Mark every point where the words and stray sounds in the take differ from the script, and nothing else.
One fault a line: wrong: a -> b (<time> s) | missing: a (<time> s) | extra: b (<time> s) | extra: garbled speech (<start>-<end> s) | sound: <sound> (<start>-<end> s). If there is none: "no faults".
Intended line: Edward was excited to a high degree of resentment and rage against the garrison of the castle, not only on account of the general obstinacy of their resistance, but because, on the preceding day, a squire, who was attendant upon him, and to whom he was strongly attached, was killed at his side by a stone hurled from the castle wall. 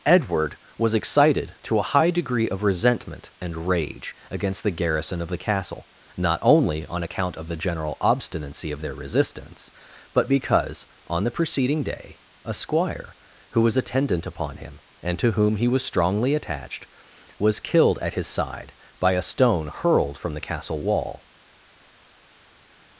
no faults